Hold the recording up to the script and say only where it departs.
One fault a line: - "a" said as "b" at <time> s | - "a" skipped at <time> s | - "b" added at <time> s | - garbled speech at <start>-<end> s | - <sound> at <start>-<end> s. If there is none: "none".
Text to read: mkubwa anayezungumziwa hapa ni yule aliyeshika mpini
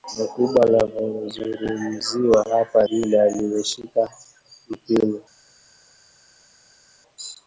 - "ni" skipped at 2.9 s